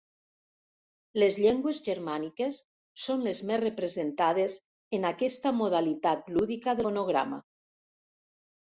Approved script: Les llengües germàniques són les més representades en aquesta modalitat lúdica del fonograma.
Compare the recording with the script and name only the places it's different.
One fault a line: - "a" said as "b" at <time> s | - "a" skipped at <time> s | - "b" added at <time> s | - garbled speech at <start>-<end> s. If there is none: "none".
- "del" skipped at 6.8 s